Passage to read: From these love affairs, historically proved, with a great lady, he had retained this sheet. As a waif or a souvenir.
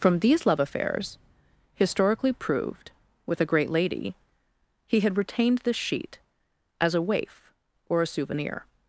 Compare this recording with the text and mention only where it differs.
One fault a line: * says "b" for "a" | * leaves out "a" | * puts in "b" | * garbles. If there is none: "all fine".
all fine